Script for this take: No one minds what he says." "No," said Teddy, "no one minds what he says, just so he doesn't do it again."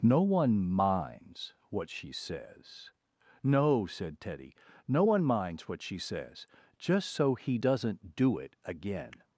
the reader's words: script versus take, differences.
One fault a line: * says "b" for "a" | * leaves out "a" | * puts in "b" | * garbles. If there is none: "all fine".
* says "she" for "he"
* says "she" for "he"